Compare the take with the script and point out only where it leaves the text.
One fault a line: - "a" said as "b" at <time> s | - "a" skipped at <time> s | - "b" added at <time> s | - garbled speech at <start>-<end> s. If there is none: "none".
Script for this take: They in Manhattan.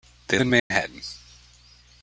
none